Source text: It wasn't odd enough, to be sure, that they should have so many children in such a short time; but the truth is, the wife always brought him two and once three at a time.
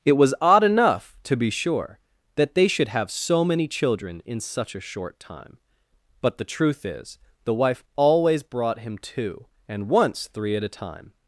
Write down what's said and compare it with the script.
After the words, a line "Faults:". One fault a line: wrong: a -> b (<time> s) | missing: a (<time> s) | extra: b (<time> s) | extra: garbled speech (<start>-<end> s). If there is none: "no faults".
It was odd enough, to be sure, that they should have so many children in such a short time; but the truth is, the wife always brought him two and once three at a time.
Faults:
wrong: wasn't -> was (0.1 s)